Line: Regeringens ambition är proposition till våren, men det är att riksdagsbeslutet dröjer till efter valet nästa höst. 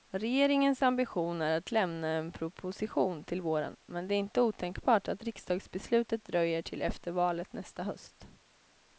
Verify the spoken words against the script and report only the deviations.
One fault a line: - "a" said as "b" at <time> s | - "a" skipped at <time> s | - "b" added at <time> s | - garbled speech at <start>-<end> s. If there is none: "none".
- "att lämna en" added at 1.6 s
- "inte otänkbart" added at 4.2 s